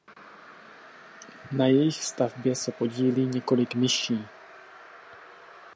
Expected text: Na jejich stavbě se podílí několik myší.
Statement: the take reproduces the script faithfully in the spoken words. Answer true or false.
true